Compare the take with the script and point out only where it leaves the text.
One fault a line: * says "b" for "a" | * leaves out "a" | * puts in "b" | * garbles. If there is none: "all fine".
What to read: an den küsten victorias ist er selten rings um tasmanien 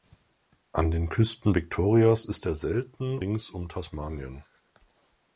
all fine